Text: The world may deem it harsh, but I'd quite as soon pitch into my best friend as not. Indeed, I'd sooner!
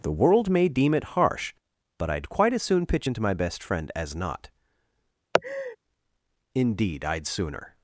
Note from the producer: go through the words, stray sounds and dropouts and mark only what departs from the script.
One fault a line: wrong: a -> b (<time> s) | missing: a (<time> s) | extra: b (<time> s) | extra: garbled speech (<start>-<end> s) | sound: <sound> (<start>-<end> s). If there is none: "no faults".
sound: laugh (5.3-5.8 s)